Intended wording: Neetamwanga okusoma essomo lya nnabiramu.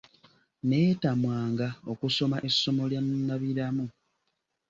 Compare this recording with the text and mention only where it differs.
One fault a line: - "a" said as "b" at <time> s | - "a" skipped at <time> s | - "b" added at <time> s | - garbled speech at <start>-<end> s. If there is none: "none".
none